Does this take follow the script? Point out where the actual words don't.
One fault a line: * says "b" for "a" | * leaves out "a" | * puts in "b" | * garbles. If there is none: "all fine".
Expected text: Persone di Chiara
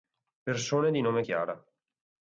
* puts in "nome"